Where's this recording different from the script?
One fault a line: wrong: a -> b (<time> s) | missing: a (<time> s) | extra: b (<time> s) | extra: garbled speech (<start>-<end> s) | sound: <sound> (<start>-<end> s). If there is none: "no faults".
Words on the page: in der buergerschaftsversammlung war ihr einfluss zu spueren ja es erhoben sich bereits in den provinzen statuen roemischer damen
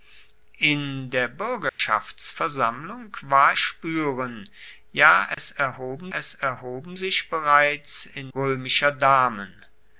sound: dropout (1.7-1.8 s)
missing: ihr einfluss zu (3.5 s)
sound: dropout (5.3-5.4 s)
extra: es erhoben (6.1 s)
missing: den provinzen statuen (8.3 s)